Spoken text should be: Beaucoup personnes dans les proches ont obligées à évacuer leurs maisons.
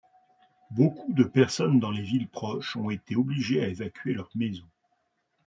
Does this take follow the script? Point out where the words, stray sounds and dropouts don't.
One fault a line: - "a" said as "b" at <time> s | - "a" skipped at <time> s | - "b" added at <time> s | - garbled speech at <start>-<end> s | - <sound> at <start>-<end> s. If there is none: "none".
- "de" added at 1.1 s
- "villes" added at 2.0 s
- "été" added at 2.9 s